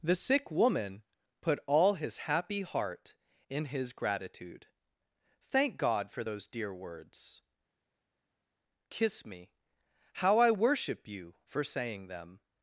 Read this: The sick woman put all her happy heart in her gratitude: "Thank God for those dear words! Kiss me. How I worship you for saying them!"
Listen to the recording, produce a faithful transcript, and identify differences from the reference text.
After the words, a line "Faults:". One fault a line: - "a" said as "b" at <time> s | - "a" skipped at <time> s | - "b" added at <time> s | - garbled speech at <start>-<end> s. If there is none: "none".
The sick woman put all his happy heart in his gratitude: "Thank God for those dear words! Kiss me. How I worship you for saying them!"
Faults:
- "her" said as "his" at 1.9 s
- "her" said as "his" at 3.6 s